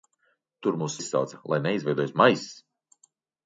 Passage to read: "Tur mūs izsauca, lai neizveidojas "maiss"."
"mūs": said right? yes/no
yes